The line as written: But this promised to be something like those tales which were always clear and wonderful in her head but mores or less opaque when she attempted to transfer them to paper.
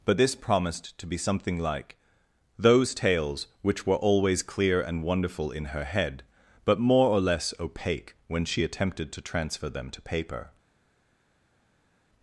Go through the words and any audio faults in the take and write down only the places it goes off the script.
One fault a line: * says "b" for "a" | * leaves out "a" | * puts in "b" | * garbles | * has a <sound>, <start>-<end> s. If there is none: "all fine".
* says "more" for "mores"